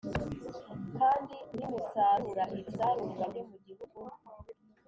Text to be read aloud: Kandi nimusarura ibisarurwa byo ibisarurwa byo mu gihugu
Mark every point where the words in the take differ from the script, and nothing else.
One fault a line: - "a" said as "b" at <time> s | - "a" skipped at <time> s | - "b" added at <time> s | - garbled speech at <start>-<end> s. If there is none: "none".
- "ibisarurwa byo" skipped at 3.4 s